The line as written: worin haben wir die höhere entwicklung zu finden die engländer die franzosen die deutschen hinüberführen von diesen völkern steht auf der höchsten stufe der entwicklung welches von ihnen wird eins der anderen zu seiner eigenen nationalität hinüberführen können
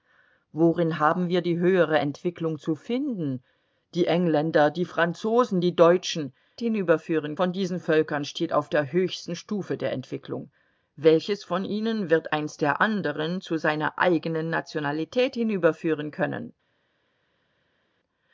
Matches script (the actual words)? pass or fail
pass